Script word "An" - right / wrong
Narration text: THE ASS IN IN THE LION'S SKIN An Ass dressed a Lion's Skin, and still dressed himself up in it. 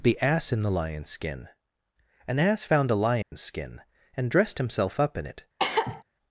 right